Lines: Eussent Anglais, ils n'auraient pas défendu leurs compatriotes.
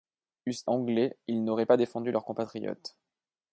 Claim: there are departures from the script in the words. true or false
false